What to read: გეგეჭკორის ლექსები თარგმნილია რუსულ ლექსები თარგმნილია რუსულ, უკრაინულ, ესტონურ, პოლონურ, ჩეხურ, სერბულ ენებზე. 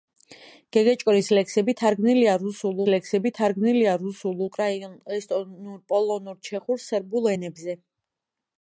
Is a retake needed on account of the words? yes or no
no